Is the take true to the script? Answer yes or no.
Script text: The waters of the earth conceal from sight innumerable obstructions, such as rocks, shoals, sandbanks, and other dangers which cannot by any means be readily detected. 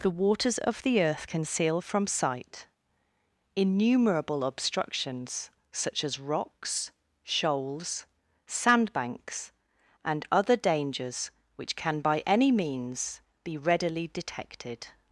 no